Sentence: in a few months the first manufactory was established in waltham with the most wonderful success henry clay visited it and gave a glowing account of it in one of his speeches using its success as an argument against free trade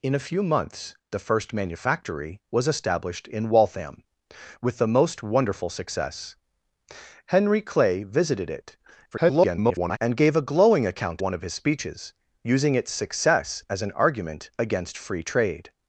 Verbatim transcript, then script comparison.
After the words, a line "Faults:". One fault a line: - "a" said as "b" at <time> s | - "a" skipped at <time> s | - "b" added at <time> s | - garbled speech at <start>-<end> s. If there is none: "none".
in a few months the first manufactory was established in waltham with the most wonderful success henry clay visited it [garbled] and gave a glowing account one of his speeches using its success as an argument against free trade
Faults:
- garbled speech at 9.1-10.0 s
- "of it in" skipped at 11.2 s